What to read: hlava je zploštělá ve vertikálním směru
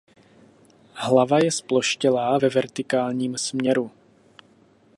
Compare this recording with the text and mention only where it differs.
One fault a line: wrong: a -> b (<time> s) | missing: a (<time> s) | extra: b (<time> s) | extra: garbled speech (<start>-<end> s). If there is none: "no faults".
no faults